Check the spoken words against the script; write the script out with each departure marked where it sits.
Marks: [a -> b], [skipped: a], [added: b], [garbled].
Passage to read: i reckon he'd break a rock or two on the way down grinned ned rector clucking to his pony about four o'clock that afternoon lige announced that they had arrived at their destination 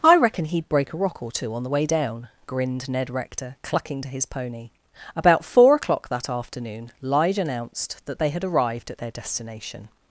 i reckon he'd break a rock or two on the way down grinned ned rector clucking to his pony about four o'clock that afternoon lige announced that they had arrived at their destination